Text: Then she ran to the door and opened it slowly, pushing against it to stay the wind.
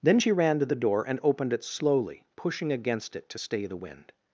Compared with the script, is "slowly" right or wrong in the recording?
right